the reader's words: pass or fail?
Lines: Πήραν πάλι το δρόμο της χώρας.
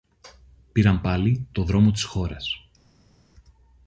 pass